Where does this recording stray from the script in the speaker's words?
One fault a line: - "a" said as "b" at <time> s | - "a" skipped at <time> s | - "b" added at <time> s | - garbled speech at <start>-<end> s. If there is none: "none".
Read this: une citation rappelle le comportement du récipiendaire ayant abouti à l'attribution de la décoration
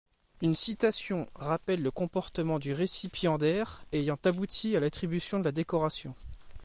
none